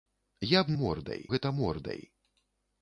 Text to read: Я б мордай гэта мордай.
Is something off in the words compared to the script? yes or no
no